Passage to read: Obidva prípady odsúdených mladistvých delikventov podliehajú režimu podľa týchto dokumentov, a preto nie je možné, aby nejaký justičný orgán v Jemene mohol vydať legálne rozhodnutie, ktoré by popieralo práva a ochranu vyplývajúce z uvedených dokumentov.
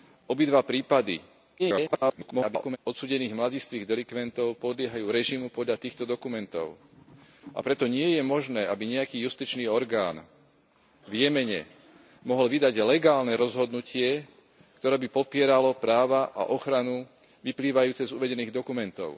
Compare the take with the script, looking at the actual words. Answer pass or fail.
fail